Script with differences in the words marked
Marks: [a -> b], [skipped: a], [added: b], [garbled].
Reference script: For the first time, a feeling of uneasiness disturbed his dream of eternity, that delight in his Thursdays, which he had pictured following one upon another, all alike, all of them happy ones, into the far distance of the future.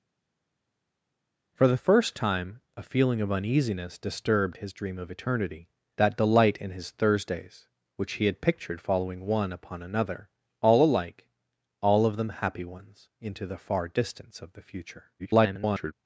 For the first time, a feeling of uneasiness disturbed his dream of eternity, that delight in his Thursdays, which he had pictured following one upon another, all alike, all of them happy ones, into the far distance of the future. [garbled]